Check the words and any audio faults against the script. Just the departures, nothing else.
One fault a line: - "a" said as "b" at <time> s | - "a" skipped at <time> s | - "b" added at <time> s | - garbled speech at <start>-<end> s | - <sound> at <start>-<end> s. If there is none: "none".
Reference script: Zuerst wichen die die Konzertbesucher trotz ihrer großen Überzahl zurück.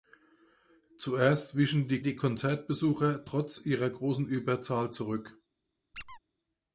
- squeak at 5.9-6.2 s